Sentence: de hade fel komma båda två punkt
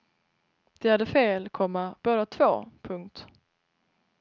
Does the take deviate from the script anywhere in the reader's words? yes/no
no